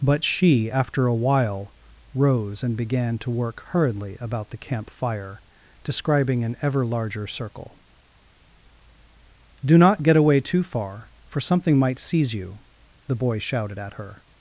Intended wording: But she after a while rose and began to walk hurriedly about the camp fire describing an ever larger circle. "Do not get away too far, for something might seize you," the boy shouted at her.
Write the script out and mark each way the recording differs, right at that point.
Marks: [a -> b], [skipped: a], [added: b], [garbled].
But she after a while rose and began to [walk -> work] hurriedly about the camp fire describing an ever larger circle. "Do not get away too far, for something might seize you," the boy shouted at her.